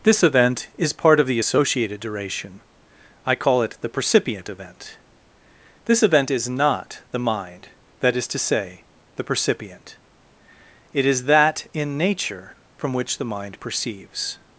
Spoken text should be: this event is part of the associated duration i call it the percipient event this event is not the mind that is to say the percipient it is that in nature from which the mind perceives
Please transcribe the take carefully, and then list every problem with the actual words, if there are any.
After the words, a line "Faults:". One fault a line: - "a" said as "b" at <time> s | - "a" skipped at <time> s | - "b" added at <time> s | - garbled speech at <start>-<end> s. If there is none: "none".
this event is part of the associated duration i call it the percipient event this event is not the mind that is to say the percipient it is that in nature from which the mind perceives
Faults:
none